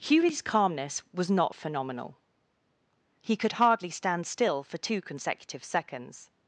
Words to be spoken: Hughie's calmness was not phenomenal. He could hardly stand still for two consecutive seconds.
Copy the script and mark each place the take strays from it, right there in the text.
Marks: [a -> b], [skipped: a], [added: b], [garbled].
Hughie's calmness was not phenomenal. He could hardly stand still for two consecutive seconds.